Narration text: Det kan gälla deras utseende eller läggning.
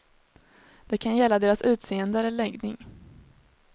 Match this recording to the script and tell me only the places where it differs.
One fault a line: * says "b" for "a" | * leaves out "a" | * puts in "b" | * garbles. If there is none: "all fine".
all fine